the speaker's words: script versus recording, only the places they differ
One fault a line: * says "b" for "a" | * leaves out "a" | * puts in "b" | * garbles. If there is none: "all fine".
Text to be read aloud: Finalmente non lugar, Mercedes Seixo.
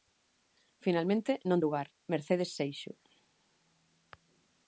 all fine